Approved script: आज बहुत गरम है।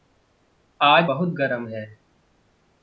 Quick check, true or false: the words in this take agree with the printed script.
true